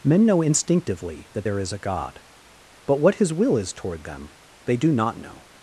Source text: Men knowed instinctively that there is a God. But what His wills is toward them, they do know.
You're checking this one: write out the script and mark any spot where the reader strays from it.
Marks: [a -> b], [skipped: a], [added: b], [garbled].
Men [knowed -> know] instinctively that there is a God. But what His [wills -> will] is toward them, they do [added: not] know.